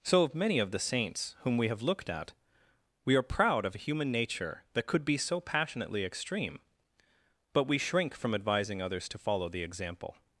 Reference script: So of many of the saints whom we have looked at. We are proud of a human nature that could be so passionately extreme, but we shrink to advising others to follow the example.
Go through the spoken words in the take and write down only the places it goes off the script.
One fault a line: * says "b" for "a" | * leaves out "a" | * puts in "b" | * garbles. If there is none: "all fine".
* says "from" for "to"